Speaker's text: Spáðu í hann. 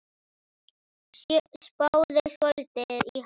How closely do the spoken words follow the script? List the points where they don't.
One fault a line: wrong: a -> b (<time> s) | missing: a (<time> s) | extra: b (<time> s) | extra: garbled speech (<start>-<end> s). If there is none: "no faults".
extra: svolítið (2.4 s)